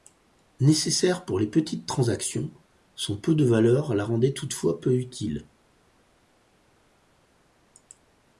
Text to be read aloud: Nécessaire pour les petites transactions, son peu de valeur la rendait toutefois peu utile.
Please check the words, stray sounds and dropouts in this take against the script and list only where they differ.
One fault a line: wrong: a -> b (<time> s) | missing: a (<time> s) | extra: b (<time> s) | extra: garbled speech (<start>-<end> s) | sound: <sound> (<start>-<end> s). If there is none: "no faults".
no faults